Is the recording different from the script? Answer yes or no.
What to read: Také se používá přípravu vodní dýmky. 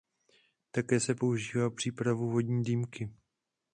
no